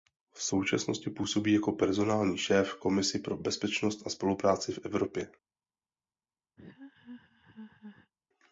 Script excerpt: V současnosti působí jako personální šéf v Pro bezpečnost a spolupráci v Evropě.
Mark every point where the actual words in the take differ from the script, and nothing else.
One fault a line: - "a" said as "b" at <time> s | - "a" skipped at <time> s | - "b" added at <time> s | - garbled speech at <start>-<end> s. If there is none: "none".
- "Komisi" added at 2.8 s